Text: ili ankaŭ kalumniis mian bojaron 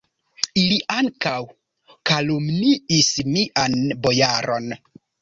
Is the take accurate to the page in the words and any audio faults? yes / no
yes